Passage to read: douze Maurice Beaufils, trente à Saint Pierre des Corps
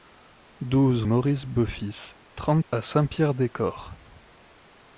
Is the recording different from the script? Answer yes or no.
no